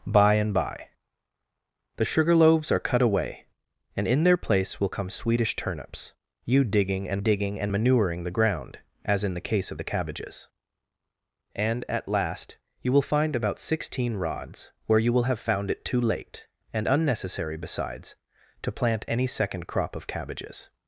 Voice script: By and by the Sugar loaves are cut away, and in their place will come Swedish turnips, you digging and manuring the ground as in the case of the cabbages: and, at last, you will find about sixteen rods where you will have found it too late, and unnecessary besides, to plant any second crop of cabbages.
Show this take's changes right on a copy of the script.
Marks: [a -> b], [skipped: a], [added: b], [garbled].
By and by the Sugar loaves are cut away, and in their place will come Swedish turnips, you digging and [added: digging and] manuring the ground as in the case of the cabbages: and, at last, you will find about sixteen rods where you will have found it too late, and unnecessary besides, to plant any second crop of cabbages.